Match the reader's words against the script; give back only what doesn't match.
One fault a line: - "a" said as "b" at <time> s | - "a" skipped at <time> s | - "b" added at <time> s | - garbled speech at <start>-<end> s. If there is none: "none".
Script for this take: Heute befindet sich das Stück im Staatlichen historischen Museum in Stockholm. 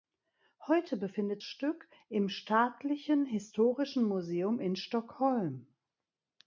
- "sich das" skipped at 1.4 s